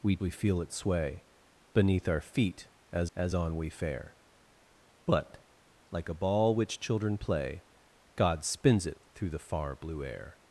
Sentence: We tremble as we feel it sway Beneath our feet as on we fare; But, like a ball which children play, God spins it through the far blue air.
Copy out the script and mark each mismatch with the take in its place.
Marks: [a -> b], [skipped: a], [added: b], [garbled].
We [skipped: tremble as] we feel it sway Beneath our feet as [added: as] on we fare; But, like a ball which children play, God spins it through the far blue air.